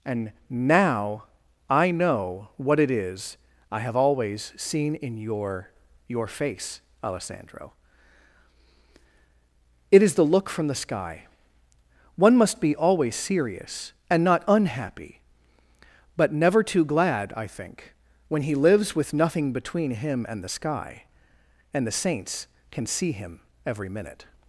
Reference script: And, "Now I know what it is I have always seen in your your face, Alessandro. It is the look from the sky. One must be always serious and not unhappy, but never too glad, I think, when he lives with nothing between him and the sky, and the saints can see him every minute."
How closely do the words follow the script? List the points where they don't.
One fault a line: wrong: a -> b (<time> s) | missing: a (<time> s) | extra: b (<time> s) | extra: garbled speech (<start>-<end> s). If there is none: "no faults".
no faults